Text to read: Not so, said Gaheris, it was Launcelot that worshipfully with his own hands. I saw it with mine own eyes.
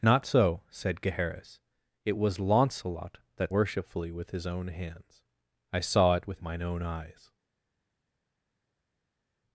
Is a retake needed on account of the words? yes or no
no